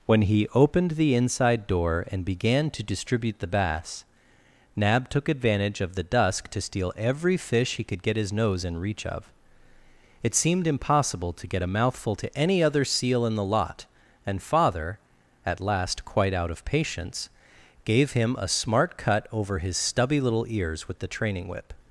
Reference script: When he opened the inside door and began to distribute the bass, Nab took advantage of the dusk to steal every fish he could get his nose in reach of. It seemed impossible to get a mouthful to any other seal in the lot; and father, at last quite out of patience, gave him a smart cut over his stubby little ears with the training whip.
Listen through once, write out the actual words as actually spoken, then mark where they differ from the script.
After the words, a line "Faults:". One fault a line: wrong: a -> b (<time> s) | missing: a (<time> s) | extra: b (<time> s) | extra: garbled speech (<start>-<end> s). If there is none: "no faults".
When he opened the inside door and began to distribute the bass, Nab took advantage of the dusk to steal every fish he could get his nose in reach of. It seemed impossible to get a mouthful to any other seal in the lot; and father, at last quite out of patience, gave him a smart cut over his stubby little ears with the training whip.
Faults:
no faults